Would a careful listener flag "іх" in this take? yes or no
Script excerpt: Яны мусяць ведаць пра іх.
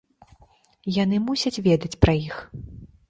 no